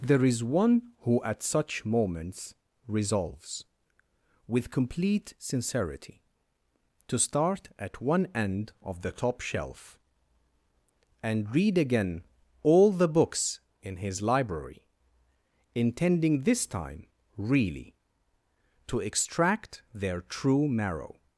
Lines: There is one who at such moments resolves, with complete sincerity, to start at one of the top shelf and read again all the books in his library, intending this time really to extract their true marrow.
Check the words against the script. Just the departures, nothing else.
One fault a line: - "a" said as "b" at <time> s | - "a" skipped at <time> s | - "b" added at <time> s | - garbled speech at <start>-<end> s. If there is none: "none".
- "end" added at 8.3 s